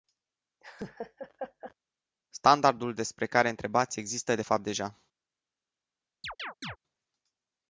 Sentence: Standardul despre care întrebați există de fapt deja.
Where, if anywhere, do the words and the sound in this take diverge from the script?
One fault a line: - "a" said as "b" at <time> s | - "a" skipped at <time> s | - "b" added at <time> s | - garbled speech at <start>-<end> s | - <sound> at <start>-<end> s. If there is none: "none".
- laugh at 0.6-1.7 s
- chirp at 6.2-6.8 s